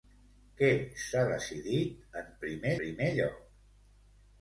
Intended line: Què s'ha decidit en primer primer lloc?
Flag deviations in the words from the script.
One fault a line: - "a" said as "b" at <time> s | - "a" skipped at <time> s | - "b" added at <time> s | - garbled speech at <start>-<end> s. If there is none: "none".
none